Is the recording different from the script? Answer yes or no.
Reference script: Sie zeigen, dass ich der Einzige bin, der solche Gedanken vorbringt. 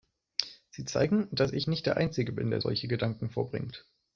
yes